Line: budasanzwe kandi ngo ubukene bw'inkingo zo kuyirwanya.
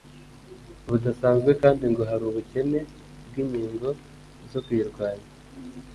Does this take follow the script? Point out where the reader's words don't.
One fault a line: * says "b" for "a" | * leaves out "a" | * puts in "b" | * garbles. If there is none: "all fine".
* puts in "hari"